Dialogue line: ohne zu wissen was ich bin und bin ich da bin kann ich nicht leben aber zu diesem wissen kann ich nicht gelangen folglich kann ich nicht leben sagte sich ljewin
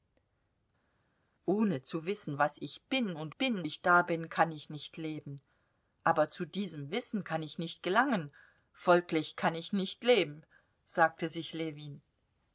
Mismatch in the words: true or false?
false